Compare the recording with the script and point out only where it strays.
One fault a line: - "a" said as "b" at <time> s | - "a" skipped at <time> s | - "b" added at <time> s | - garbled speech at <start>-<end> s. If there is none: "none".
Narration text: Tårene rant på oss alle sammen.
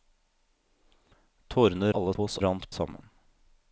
- "rant" said as "alle" at 1.9 s
- "alle" said as "rant" at 2.4 s